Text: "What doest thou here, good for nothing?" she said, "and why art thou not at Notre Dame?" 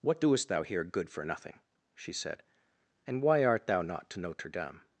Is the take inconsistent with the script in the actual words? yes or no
yes